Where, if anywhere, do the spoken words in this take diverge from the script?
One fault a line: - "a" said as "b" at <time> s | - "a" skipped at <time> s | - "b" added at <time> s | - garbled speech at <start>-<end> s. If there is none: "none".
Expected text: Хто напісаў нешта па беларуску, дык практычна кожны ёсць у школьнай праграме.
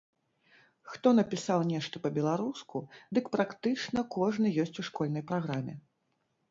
none